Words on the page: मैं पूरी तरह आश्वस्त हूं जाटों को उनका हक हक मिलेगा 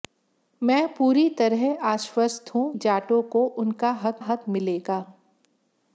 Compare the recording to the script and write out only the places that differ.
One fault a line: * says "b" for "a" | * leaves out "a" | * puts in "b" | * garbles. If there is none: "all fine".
all fine